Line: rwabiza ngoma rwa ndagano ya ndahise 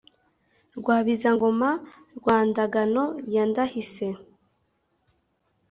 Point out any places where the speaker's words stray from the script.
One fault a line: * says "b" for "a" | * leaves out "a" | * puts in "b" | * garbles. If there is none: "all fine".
all fine